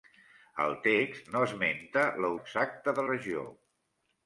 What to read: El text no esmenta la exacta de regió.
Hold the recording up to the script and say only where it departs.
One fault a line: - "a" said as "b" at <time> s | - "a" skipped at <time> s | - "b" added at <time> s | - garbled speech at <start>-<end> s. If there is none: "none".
none